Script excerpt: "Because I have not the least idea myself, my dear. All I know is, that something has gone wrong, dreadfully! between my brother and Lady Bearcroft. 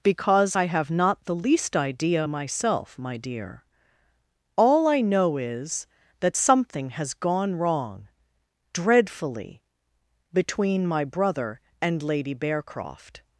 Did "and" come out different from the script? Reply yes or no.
no